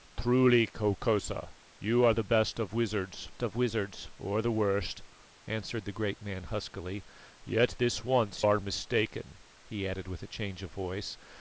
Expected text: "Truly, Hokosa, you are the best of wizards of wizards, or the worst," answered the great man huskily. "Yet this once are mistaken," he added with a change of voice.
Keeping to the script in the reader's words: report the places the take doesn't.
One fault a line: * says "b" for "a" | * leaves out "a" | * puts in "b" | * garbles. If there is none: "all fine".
all fine